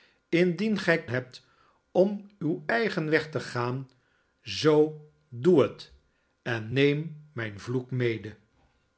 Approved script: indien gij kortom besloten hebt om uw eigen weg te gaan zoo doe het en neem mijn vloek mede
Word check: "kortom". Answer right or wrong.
wrong